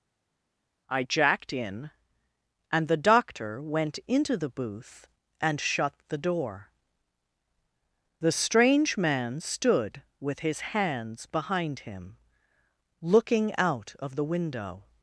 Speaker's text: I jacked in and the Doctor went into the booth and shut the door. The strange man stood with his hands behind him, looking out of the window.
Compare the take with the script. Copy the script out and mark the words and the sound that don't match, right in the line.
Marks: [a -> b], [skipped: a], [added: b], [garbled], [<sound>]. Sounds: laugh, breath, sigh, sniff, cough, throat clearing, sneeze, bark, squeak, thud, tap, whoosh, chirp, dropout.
I jacked in and the Doctor went into the booth and shut the door. The strange man stood with his hands behind him, looking out of the window.